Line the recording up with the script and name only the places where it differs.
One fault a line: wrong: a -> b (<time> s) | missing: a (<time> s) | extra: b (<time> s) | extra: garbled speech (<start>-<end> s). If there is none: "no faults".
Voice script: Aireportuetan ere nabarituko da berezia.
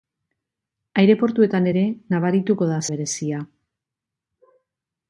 no faults